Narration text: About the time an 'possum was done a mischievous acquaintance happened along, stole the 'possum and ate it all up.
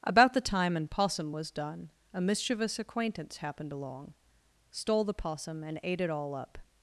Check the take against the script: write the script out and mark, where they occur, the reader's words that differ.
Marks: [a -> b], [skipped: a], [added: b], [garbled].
About the time an 'possum was done a mischievous acquaintance happened along, stole the 'possum and ate it all up.